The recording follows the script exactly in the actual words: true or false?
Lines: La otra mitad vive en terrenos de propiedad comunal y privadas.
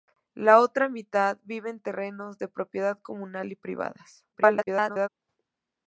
false